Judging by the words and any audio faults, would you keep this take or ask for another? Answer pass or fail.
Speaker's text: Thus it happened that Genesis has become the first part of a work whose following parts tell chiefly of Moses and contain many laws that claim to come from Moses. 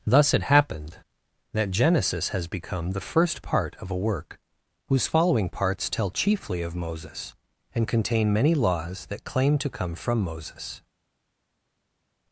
pass